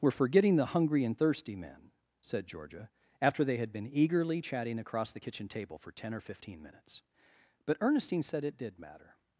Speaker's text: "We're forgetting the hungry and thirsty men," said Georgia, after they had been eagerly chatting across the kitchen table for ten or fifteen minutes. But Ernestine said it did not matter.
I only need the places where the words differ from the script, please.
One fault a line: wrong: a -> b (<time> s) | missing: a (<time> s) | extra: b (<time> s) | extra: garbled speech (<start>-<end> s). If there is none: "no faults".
missing: not (8.8 s)